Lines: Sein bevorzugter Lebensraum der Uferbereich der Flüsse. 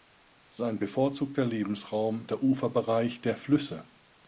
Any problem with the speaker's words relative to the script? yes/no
no